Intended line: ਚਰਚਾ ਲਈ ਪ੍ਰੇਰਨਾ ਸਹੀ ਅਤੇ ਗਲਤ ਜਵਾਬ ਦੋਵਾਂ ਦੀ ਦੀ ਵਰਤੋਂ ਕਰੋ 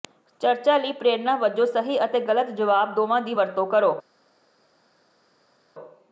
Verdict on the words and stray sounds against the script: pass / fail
fail